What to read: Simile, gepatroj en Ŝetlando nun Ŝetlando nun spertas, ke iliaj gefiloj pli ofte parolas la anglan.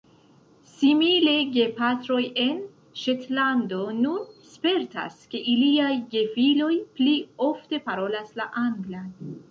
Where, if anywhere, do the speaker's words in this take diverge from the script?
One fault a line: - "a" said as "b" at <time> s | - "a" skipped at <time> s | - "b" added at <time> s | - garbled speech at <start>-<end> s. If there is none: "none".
- "Ŝetlando nun" skipped at 4.2 s